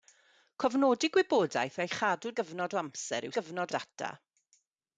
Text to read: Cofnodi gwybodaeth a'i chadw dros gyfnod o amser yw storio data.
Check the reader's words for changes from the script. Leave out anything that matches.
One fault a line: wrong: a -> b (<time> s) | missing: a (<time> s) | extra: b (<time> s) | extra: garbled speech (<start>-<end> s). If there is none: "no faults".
missing: dros (2.3 s)
wrong: storio -> gyfnod (3.4 s)